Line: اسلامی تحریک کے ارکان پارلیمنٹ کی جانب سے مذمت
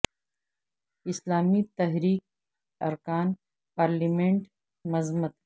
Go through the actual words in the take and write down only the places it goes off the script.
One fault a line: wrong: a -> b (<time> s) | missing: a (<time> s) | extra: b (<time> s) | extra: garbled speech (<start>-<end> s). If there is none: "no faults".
missing: کے (2.2 s)
missing: کی جانب سے (4.4 s)